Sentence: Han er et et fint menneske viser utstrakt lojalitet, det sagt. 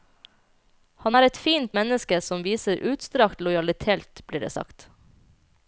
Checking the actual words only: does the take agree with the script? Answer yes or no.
no